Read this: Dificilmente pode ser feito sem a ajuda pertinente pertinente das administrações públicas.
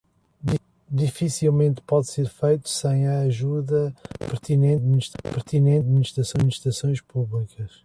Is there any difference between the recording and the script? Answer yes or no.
no